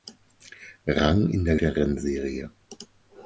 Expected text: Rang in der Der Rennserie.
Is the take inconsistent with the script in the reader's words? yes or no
no